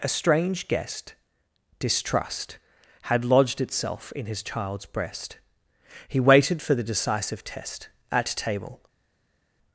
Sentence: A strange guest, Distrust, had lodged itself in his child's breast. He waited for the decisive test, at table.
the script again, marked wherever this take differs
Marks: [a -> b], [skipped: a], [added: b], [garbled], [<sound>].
A strange guest, Distrust, had lodged itself in his child's breast. He waited for the decisive test, at table.